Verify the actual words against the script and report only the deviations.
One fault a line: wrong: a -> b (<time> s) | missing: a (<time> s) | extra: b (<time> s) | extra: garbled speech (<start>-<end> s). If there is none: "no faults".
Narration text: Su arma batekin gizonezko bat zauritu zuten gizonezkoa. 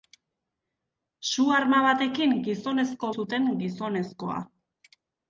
missing: bat zauritu (3.1 s)